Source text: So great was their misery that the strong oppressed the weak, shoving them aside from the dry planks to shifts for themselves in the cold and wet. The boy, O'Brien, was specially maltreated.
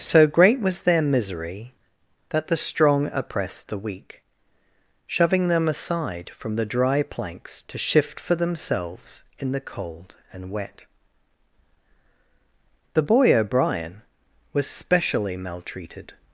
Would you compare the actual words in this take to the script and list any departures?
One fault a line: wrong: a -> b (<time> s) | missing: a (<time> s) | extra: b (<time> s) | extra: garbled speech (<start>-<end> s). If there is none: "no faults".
wrong: shifts -> shift (7.8 s)